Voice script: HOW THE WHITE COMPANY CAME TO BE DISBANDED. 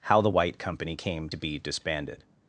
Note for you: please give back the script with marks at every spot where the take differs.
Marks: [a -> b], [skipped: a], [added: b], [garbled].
HOW THE WHITE COMPANY CAME TO BE DISBANDED.